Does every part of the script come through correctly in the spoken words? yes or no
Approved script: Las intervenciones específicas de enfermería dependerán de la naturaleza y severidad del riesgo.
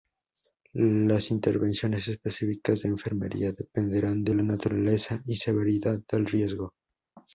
yes